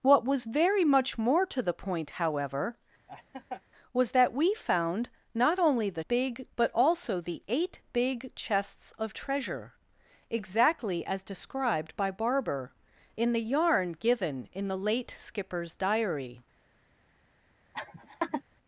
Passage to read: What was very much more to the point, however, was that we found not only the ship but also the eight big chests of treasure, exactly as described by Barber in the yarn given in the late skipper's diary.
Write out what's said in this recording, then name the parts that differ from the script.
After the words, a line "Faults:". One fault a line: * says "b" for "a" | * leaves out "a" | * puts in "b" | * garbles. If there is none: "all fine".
What was very much more to the point, however, was that we found not only the big but also the eight big chests of treasure, exactly as described by Barber in the yarn given in the late skipper's diary.
Faults:
* says "big" for "ship"